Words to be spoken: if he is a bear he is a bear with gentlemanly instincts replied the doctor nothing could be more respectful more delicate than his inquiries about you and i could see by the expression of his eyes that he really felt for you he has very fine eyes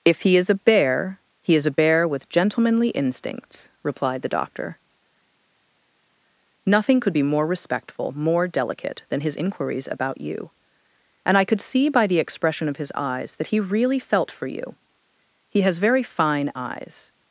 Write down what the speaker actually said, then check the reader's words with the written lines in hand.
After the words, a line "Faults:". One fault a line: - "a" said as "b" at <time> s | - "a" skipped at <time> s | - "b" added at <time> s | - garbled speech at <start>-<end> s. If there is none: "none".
if he is a bear he is a bear with gentlemanly instincts replied the doctor nothing could be more respectful more delicate than his inquiries about you and i could see by the expression of his eyes that he really felt for you he has very fine eyes
Faults:
none